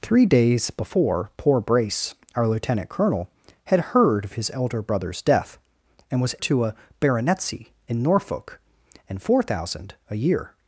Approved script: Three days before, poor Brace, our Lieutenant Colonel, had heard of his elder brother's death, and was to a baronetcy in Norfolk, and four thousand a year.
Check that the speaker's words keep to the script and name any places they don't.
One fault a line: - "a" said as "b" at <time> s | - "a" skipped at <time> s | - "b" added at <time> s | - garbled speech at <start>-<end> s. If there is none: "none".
none